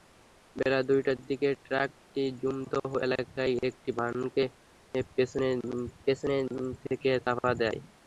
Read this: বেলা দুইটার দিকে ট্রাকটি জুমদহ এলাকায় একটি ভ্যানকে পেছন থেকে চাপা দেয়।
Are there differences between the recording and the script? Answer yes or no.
yes